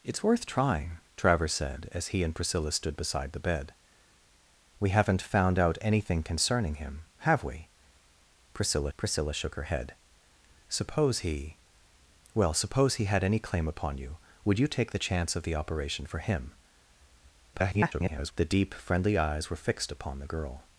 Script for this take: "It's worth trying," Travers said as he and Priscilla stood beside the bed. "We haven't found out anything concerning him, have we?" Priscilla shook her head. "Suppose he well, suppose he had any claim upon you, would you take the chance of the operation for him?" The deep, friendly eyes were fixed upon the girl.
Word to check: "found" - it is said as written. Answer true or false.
true